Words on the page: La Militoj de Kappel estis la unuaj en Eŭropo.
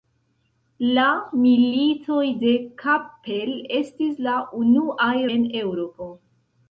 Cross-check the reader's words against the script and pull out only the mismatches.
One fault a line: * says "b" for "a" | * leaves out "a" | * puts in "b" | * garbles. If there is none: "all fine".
all fine